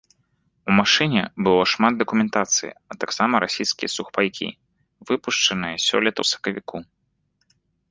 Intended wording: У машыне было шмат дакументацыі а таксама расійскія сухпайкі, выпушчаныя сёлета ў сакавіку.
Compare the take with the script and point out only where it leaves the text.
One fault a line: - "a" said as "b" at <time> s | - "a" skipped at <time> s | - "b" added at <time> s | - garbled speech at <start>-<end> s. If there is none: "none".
none